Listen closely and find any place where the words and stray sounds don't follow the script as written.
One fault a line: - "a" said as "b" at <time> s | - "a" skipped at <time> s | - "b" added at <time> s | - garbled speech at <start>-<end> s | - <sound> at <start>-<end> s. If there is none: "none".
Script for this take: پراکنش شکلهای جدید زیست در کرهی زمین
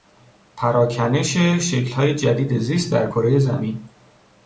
none